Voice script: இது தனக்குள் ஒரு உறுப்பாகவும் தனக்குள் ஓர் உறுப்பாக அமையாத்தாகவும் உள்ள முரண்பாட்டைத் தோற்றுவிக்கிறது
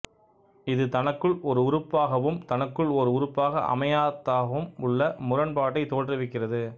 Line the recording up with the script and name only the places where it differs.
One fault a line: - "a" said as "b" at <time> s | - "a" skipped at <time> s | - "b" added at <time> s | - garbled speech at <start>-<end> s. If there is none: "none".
none